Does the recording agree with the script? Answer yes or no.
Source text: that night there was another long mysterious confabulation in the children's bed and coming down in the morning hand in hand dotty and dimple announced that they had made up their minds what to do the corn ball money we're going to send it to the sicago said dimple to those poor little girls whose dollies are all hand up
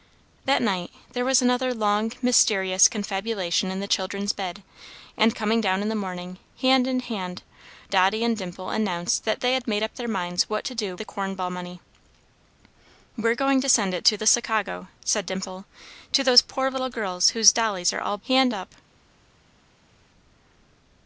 yes